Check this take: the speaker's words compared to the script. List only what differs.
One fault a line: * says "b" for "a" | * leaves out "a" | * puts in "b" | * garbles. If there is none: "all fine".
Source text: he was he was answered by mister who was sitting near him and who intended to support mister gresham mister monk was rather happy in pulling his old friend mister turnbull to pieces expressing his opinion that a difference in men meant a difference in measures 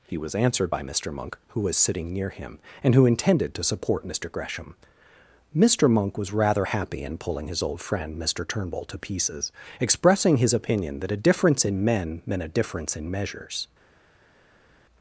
* leaves out "he was"
* puts in "monk"